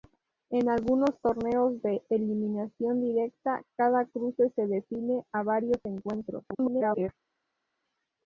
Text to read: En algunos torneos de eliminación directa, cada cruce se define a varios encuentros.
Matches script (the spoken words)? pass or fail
fail